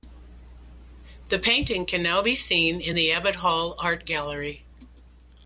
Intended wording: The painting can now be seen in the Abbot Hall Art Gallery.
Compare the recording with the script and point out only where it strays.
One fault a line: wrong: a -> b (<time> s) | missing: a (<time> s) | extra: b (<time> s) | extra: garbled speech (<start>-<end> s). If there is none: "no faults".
no faults